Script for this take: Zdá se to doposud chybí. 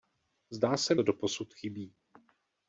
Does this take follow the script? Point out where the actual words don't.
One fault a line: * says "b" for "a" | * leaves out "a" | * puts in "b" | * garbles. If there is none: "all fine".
all fine